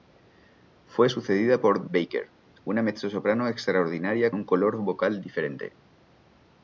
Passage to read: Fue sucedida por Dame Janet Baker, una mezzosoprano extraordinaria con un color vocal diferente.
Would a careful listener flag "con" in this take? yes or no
yes